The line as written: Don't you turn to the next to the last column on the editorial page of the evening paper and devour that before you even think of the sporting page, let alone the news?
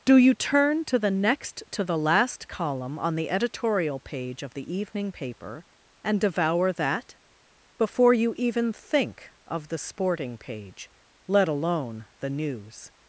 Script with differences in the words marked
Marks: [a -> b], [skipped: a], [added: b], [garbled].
[Don't -> Do] you turn to the next to the last column on the editorial page of the evening paper and devour that before you even think of the sporting page, let alone the news?